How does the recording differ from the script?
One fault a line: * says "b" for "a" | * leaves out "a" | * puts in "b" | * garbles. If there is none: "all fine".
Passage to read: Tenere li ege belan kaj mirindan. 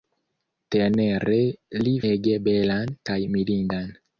all fine